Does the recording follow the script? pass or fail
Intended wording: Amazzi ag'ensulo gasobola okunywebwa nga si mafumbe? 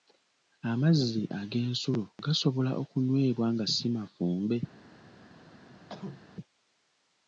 pass